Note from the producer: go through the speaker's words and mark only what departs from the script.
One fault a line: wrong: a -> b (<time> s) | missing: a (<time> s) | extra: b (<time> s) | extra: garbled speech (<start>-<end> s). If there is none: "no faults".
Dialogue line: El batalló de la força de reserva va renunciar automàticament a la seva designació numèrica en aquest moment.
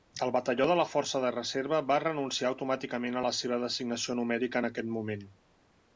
no faults